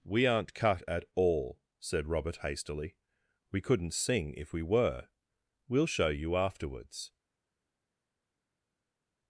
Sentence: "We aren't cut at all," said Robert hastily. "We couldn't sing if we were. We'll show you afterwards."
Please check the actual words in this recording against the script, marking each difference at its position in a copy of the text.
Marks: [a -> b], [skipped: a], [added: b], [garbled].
"We aren't cut at all," said Robert hastily. "We couldn't sing if we were. We'll show you afterwards."